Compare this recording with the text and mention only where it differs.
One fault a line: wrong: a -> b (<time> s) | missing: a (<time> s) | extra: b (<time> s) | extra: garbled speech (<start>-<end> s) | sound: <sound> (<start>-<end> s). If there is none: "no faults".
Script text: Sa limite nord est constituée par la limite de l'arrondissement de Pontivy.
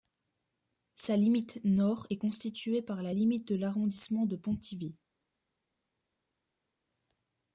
no faults